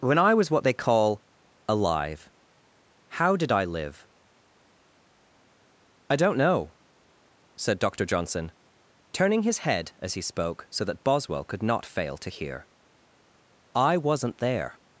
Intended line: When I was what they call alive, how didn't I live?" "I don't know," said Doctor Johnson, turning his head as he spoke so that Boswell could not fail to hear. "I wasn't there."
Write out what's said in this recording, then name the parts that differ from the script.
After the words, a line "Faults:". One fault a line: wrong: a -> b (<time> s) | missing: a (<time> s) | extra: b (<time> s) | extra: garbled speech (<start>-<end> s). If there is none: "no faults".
When I was what they call alive, how did I live?" "I don't know," said Doctor Johnson, turning his head as he spoke so that Boswell could not fail to hear. "I wasn't there."
Faults:
wrong: didn't -> did (3.4 s)